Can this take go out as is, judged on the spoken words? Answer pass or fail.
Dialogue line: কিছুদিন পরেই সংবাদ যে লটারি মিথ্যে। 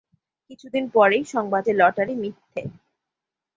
pass